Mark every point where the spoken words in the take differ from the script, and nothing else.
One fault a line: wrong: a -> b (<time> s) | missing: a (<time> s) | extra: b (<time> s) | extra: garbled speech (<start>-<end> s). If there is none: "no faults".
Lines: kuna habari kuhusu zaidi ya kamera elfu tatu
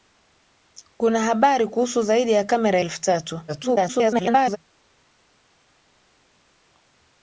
extra: garbled speech (3.5-4.6 s)